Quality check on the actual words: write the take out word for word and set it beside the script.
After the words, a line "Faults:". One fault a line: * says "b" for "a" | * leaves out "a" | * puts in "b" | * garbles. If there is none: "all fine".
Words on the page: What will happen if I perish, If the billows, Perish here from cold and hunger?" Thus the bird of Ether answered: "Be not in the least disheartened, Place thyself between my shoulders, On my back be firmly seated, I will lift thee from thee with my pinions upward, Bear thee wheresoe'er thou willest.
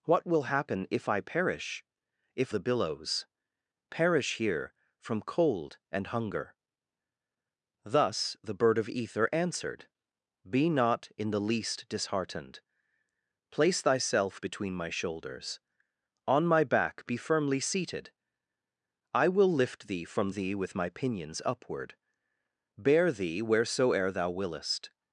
What will happen if I perish, If the billows, Perish here from cold and hunger?" Thus the bird of Ether answered: "Be not in the least disheartened, Place thyself between my shoulders, On my back be firmly seated, I will lift thee from thee with my pinions upward, Bear thee wheresoe'er thou willest.
Faults:
all fine